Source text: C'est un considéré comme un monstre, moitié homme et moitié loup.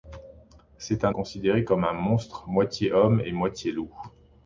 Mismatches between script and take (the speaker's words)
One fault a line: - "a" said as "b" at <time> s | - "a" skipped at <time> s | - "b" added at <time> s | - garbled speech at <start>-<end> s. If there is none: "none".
none